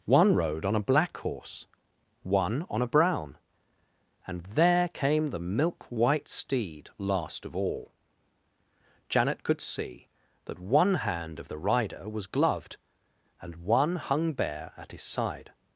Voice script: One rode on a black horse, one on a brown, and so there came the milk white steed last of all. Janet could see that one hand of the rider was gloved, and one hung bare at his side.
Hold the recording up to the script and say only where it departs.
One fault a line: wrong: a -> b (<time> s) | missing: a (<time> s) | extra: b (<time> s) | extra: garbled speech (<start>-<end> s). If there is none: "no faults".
missing: so (4.4 s)